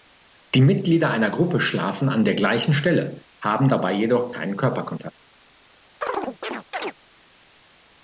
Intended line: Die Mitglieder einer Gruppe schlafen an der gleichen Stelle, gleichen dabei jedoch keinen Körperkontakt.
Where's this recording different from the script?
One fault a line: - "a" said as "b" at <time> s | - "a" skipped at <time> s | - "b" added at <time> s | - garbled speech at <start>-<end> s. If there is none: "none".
- "gleichen" said as "haben" at 3.4 s